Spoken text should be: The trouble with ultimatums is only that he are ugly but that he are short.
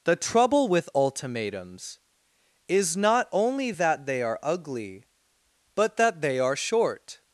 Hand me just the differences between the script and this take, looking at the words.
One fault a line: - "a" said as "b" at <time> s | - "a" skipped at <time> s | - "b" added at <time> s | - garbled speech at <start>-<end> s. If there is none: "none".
- "not" added at 3.0 s
- "he" said as "they" at 4.1 s
- "he" said as "they" at 6.2 s